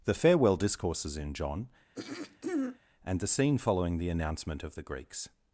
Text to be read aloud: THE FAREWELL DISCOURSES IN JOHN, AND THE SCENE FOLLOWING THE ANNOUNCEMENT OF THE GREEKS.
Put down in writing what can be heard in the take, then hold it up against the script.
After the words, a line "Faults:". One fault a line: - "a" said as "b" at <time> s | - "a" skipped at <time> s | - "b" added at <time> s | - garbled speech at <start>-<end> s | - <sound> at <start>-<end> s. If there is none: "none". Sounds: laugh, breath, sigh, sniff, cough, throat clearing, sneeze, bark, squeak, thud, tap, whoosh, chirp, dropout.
THE FAREWELL DISCOURSES IN JOHN, AND THE SCENE FOLLOWING THE ANNOUNCEMENT OF THE GREEKS.
Faults:
- throat clearing at 2.0-2.8 s